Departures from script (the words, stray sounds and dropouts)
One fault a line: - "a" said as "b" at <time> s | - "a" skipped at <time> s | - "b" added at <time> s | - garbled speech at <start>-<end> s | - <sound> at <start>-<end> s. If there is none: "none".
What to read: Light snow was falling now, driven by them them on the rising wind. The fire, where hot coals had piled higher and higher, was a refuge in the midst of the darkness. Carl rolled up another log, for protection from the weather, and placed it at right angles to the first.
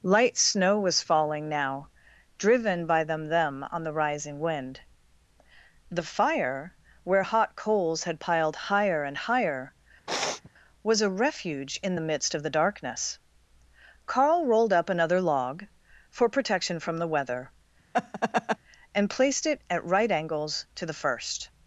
- sniff at 10.1-10.5 s
- laugh at 17.9-18.6 s